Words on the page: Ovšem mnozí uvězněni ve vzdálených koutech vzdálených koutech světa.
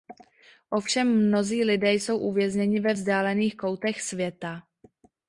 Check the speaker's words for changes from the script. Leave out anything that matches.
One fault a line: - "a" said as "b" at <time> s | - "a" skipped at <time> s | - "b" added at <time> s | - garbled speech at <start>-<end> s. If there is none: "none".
- "lidé jsou" added at 1.6 s
- "vzdálených koutech" skipped at 4.0 s